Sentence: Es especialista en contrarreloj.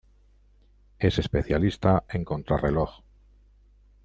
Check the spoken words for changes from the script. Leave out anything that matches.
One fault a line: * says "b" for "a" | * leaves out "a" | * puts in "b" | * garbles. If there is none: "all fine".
all fine